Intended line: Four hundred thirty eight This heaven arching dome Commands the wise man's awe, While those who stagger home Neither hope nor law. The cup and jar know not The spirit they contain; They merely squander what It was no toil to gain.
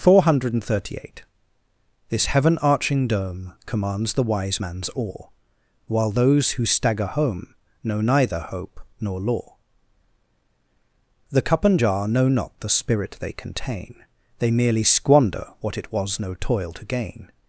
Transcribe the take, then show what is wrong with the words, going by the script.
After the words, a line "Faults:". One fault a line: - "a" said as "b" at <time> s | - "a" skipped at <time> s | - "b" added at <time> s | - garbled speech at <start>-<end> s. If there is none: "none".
Four hundred thirty eight This heaven arching dome Commands the wise man's awe, While those who stagger home Know neither hope nor law. The cup and jar know not The spirit they contain; They merely squander what It was no toil to gain.
Faults:
- "Know" added at 7.8 s